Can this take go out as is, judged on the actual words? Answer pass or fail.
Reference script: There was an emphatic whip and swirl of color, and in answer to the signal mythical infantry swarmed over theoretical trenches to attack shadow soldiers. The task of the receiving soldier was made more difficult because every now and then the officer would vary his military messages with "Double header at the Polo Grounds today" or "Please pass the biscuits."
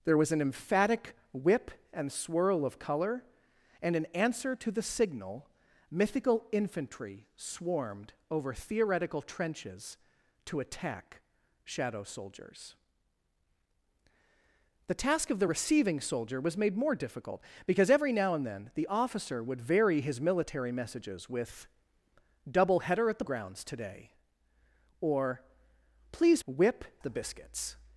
fail